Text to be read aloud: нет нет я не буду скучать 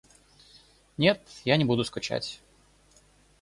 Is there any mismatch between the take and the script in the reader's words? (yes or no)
yes